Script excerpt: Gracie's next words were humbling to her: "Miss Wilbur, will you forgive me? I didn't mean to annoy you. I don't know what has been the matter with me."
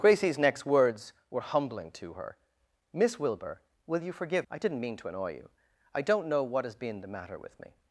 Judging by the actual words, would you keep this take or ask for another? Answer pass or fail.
fail